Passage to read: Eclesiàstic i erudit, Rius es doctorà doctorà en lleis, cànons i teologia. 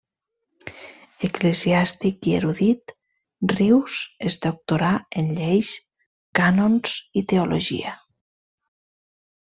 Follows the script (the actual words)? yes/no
no